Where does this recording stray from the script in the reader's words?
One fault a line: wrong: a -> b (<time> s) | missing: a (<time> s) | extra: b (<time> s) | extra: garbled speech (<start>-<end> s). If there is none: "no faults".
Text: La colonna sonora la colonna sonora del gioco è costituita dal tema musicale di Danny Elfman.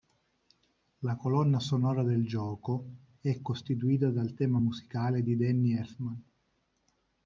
missing: la colonna sonora (2.0 s)